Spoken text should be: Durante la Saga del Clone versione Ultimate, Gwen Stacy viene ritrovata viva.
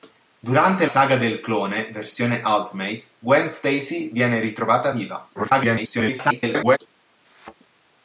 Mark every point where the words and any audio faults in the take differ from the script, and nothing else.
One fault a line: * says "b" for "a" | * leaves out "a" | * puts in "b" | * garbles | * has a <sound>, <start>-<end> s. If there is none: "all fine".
* leaves out "la"
* garbles
* has a thud, 7.2-7.5 s